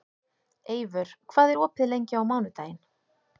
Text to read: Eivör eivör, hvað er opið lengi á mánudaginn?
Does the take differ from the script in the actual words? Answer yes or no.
yes